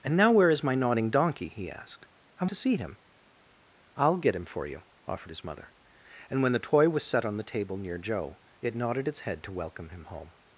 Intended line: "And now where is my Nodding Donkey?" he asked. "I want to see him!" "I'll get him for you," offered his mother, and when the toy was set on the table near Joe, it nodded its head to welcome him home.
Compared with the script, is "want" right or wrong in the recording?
wrong